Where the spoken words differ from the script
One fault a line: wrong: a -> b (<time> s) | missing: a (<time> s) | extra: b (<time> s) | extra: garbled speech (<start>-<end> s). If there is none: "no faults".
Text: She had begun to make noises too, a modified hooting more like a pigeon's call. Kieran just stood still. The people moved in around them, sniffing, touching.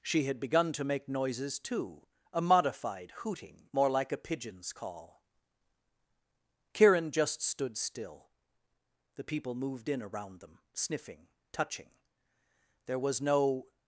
extra: There was no (12.8 s)